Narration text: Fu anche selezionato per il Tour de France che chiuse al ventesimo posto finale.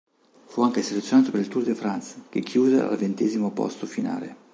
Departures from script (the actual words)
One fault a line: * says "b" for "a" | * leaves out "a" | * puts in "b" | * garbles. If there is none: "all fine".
all fine